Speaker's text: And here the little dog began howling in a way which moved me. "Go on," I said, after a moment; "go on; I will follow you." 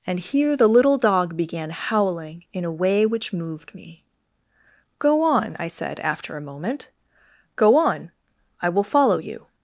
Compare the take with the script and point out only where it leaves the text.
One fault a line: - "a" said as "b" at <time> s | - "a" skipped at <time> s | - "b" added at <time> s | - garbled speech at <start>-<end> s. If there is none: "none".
none